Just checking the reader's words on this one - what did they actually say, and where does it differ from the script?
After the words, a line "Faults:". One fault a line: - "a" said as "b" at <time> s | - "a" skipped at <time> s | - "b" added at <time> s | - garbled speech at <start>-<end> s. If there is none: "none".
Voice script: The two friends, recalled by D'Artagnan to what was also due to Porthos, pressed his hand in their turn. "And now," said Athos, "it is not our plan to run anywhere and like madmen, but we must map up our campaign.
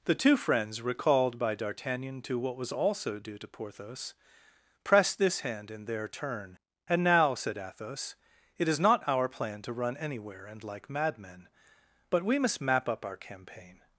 The two friends, recalled by D'Artagnan to what was also due to Porthos, pressed this hand in their turn. "And now," said Athos, "it is not our plan to run anywhere and like madmen, but we must map up our campaign.
Faults:
- "his" said as "this" at 5.2 s